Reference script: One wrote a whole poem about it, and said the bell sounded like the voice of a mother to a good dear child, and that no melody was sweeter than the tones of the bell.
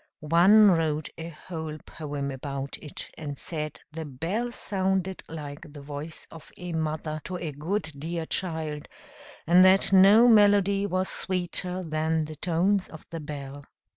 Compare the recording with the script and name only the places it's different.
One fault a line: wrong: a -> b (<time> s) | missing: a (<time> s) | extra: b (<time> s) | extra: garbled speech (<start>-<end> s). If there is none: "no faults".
no faults